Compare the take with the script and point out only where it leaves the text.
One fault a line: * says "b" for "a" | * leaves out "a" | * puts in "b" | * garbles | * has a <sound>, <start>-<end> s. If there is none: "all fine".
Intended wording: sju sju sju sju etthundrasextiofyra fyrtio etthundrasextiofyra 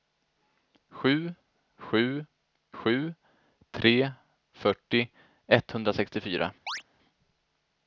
* says "tre" for "sju etthundrasextiofyra"
* has a chirp, 6.7-6.8 s